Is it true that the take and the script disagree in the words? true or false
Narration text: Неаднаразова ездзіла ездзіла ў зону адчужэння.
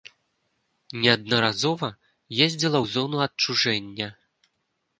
true